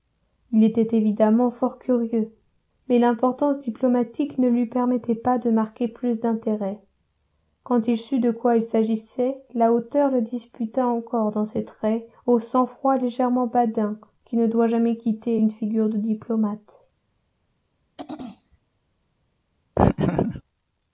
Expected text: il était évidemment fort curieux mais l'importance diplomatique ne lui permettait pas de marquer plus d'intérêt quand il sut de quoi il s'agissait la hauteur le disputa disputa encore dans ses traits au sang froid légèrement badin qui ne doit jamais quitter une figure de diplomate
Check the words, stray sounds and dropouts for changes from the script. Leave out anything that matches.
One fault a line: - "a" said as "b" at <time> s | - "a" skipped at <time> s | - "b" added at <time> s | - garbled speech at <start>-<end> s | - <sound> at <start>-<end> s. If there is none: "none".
- "disputa" skipped at 10.9 s
- throat clearing at 18.0-18.6 s
- laugh at 19.8-20.4 s